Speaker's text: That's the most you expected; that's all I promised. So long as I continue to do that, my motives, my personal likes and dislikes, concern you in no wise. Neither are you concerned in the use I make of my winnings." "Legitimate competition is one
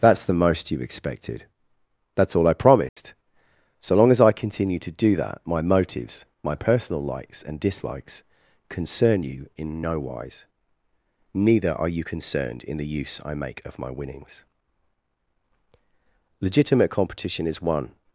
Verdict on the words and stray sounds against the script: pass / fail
fail